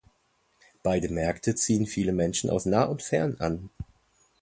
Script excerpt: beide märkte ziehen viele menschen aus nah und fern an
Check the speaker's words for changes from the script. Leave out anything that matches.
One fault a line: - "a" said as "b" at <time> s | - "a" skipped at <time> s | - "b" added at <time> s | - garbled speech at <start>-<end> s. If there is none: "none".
none